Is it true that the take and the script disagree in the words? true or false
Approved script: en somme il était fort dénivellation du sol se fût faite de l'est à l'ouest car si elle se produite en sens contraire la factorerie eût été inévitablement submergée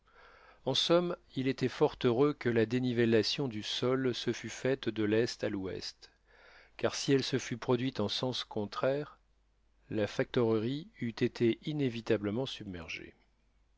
true